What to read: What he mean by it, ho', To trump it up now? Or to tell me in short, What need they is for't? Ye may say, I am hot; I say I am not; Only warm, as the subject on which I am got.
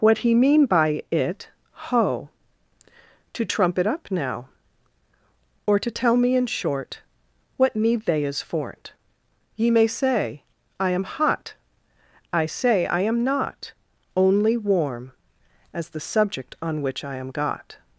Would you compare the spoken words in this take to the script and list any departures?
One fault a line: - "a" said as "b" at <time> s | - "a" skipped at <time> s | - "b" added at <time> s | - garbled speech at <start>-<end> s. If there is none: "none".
none